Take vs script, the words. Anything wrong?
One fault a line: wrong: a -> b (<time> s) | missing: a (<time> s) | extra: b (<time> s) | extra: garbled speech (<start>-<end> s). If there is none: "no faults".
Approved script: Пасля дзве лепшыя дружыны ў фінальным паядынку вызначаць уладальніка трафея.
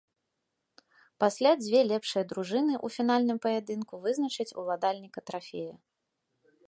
no faults